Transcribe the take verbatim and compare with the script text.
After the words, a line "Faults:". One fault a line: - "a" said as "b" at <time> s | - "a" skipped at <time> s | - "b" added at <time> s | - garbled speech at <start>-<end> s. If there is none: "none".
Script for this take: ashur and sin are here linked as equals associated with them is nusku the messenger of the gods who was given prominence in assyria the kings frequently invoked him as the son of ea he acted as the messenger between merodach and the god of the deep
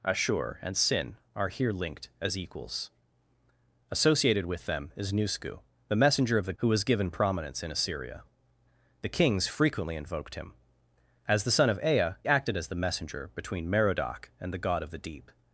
ashur and sin are here linked as equals associated with them is nusku the messenger of the who was given prominence in assyria the kings frequently invoked him as the son of ea acted as the messenger between merodach and the god of the deep
Faults:
- "gods" skipped at 6.6 s
- "he" skipped at 12.1 s